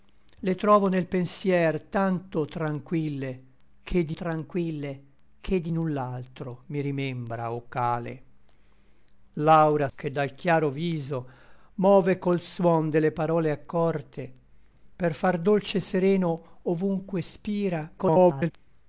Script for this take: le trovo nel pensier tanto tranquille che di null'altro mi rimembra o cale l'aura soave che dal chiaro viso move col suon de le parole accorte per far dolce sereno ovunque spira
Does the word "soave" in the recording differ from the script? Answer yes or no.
yes